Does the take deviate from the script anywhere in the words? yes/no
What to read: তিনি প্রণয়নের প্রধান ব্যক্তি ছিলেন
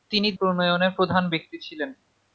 no